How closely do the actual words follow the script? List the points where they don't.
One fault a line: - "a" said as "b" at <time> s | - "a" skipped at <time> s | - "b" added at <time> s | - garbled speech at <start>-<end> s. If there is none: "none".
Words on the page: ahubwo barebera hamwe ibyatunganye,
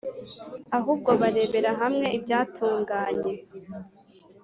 none